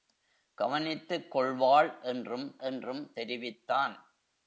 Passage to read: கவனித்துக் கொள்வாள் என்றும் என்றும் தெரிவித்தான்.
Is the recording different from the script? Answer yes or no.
no